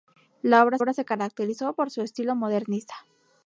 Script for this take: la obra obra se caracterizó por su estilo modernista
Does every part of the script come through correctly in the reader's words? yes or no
yes